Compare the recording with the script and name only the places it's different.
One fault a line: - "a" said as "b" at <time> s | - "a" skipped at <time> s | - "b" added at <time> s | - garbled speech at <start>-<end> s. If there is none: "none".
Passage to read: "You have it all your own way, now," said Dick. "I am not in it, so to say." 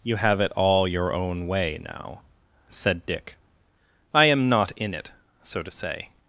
none